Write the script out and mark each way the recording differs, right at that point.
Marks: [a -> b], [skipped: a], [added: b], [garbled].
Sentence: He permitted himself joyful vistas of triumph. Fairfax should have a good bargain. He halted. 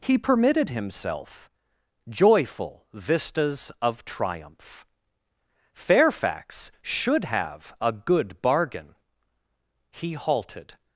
He permitted himself joyful vistas of triumph. Fairfax should have a good bargain. He halted.